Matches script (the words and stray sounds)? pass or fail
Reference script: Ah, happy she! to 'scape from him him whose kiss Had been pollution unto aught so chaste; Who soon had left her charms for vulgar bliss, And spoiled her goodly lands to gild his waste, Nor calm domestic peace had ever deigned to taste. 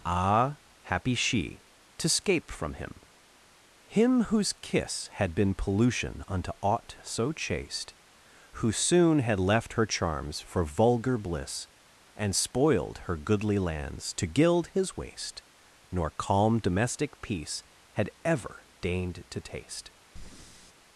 fail